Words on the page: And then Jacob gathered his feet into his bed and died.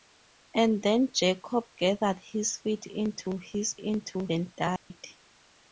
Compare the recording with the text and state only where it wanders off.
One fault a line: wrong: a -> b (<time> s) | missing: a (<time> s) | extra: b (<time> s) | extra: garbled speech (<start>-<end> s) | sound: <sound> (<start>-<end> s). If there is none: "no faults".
wrong: bed -> into (3.8 s)
sound: dropout (4.8-4.9 s)